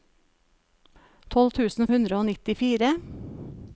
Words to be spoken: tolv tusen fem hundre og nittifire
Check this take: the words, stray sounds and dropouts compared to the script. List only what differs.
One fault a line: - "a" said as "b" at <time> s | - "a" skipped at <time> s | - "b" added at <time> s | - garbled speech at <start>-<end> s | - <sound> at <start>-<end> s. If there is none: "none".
- "fem" skipped at 1.9 s